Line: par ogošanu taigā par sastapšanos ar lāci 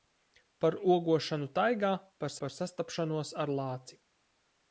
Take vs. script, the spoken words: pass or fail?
fail